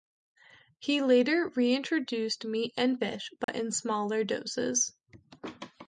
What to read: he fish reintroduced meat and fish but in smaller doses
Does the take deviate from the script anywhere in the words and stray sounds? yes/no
yes